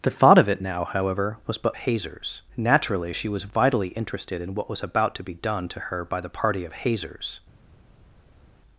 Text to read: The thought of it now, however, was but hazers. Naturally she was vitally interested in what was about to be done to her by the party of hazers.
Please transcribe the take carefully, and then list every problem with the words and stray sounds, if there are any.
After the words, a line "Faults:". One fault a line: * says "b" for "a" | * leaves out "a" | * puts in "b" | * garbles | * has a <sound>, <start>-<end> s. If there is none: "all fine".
The thought of it now, however, was but hazers. Naturally she was vitally interested in what was about to be done to her by the party of hazers.
Faults:
all fine